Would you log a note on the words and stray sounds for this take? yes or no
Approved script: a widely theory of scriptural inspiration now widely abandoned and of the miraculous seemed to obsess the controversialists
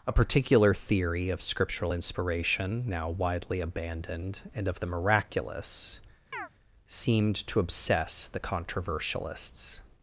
yes